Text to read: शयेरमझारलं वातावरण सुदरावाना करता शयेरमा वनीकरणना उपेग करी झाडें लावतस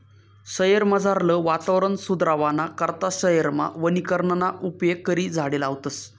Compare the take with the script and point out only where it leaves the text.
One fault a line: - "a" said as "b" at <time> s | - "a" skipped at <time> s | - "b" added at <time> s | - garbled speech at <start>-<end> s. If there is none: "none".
none